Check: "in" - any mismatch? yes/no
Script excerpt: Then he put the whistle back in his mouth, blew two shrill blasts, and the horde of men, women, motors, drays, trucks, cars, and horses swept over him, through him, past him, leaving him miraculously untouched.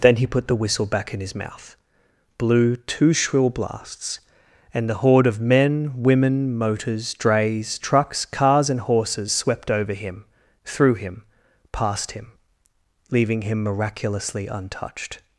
no